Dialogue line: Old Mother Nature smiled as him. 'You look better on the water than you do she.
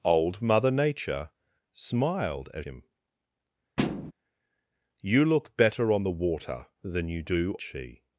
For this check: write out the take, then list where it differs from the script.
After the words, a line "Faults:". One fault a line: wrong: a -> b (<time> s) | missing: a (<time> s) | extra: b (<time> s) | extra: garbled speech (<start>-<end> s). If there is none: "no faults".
Old Mother Nature smiled as him. 'You look better on the water than you do she.
Faults:
no faults